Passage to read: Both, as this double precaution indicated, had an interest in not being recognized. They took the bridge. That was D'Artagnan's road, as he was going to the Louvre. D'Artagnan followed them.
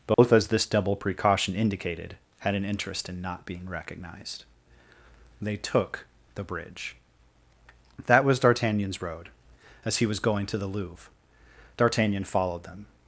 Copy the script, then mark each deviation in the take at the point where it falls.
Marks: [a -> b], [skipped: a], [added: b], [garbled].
Both, as this double precaution indicated, had an interest in not being recognized. They took the bridge. That was D'Artagnan's road, as he was going to the Louvre. D'Artagnan followed them.